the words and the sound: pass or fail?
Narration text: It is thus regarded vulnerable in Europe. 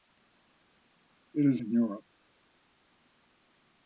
fail